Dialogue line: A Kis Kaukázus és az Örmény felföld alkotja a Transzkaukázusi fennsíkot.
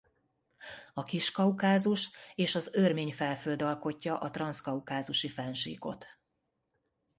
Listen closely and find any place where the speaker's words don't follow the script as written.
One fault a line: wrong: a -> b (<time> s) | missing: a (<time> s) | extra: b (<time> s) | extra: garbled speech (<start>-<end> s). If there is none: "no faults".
no faults